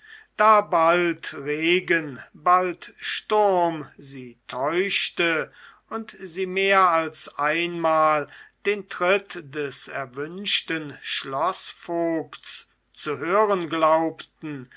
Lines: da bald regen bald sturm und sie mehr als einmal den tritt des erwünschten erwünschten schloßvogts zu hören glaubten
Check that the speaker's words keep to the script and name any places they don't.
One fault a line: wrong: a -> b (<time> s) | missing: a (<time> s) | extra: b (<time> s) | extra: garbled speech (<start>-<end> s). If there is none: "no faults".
extra: sie täuschte (4.0 s)
missing: erwünschten (11.0 s)